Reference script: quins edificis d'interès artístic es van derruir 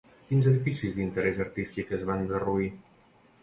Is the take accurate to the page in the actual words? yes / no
yes